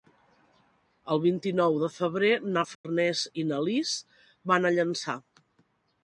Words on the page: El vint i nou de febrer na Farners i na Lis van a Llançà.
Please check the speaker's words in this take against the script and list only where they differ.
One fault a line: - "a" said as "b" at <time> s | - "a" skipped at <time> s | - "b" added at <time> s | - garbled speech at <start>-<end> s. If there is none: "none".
none